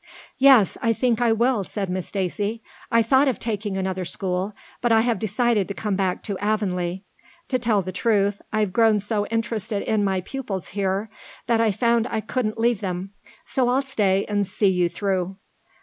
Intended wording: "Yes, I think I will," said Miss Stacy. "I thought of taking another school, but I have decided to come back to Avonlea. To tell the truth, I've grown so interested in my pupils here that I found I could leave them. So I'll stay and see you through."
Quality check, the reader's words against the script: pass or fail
fail